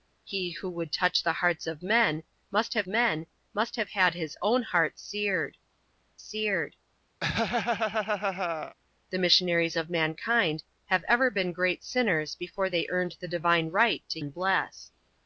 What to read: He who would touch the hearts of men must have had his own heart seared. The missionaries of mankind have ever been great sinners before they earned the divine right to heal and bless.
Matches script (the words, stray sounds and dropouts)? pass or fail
fail